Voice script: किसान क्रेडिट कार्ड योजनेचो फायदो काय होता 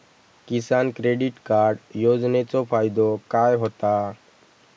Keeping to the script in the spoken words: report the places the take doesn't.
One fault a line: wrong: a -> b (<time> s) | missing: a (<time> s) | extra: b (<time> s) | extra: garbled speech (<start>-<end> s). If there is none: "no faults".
no faults